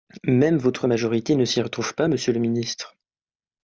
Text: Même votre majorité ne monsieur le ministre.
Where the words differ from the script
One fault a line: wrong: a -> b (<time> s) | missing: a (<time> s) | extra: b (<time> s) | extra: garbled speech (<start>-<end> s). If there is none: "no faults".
extra: s'y retrouve pas (1.4 s)